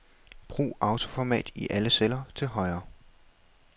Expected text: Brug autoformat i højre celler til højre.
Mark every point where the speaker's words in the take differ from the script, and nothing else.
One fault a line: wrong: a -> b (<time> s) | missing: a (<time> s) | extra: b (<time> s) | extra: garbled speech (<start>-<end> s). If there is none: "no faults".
wrong: højre -> alle (1.7 s)